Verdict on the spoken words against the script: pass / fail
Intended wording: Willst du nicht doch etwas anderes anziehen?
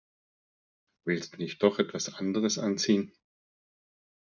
pass